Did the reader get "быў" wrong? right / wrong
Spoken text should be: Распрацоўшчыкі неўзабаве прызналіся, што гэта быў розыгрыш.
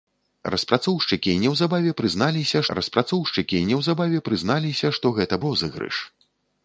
wrong